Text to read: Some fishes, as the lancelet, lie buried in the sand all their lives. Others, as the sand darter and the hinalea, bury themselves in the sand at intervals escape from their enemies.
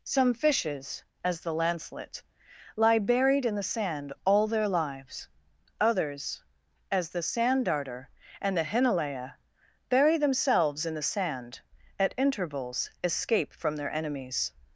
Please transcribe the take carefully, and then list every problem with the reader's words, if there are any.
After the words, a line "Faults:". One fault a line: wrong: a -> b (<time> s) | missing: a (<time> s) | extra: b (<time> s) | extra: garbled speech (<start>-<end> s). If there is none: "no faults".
Some fishes, as the lancelet, lie buried in the sand all their lives. Others, as the sand darter and the hinalea, bury themselves in the sand at intervals escape from their enemies.
Faults:
no faults